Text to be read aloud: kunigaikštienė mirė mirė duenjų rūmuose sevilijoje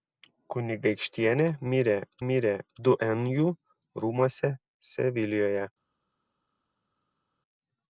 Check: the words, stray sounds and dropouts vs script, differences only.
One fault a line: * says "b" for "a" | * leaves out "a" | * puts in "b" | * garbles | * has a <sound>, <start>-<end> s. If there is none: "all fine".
all fine